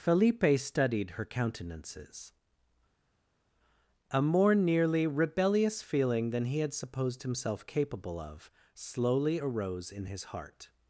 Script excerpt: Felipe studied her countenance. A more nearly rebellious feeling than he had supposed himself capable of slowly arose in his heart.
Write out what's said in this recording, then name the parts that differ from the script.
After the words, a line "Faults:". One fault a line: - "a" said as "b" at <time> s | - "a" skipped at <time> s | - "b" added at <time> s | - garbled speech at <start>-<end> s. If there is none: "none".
Felipe studied her countenances. A more nearly rebellious feeling than he had supposed himself capable of slowly arose in his heart.
Faults:
- "countenance" said as "countenances" at 1.2 s